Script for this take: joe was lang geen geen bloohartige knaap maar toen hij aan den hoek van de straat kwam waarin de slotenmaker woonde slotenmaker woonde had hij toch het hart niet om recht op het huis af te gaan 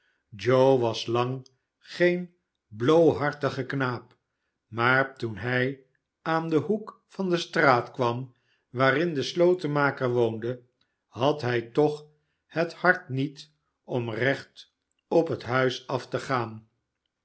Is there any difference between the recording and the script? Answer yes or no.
yes